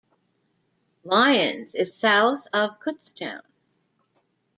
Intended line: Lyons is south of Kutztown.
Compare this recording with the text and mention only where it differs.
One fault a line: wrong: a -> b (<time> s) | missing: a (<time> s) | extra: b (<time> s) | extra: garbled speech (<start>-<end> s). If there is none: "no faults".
no faults